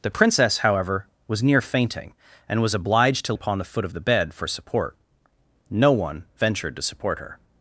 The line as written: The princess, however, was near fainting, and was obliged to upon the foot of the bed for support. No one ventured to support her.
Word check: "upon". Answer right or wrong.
right